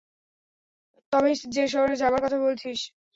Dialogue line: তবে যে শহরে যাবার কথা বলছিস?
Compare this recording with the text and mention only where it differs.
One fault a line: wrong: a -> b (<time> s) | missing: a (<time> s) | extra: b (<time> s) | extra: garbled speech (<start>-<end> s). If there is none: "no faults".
no faults